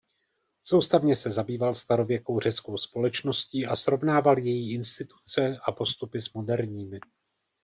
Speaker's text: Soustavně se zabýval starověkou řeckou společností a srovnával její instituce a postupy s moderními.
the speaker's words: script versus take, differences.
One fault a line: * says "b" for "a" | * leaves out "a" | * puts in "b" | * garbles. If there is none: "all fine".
all fine